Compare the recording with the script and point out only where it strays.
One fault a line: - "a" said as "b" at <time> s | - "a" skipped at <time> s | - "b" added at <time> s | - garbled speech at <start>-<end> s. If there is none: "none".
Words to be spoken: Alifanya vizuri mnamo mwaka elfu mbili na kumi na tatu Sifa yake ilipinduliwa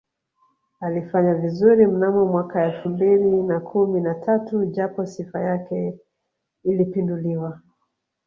- "japo" added at 4.6 s